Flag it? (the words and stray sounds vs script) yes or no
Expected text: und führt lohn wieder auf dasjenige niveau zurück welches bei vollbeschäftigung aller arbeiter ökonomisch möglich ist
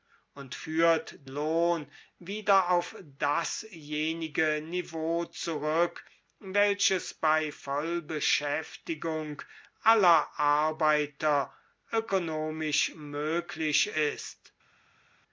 no